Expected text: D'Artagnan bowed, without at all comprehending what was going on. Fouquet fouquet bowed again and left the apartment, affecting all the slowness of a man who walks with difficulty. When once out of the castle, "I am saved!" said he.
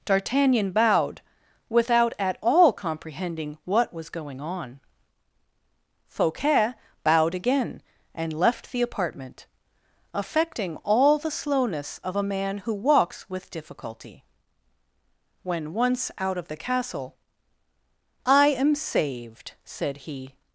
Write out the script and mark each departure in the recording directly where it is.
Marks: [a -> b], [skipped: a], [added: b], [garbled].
D'Artagnan bowed, without at all comprehending what was going on. Fouquet [skipped: fouquet] bowed again and left the apartment, affecting all the slowness of a man who walks with difficulty. When once out of the castle, "I am saved!" said he.